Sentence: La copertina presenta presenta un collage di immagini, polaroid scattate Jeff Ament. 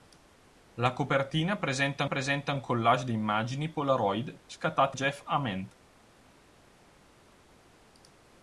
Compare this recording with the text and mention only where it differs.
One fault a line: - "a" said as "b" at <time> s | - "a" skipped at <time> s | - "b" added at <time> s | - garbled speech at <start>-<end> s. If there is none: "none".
none